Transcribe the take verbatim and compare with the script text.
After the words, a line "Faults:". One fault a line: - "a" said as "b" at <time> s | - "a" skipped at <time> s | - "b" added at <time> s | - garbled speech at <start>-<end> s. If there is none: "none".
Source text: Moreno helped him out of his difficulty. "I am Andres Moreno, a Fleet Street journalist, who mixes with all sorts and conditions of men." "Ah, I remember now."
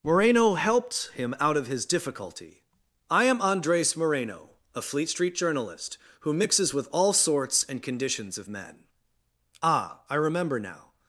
Moreno helped him out of his difficulty. "I am Andres Moreno, a Fleet Street journalist, who mixes with all sorts and conditions of men." "Ah, I remember now."
Faults:
none